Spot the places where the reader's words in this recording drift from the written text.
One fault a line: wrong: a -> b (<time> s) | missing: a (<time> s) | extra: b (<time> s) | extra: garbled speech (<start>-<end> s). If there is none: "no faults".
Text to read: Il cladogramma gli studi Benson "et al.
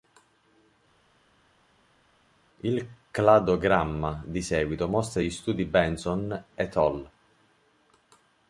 extra: di seguito mostra (4.3 s)